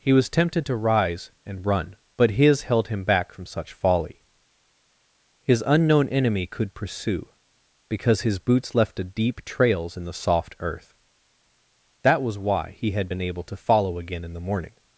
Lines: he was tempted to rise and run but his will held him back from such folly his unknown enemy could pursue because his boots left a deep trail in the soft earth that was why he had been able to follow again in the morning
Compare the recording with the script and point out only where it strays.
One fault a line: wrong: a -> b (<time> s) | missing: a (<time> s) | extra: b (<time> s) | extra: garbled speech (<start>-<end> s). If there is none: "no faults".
missing: will (2.6 s)
wrong: trail -> trails (9.4 s)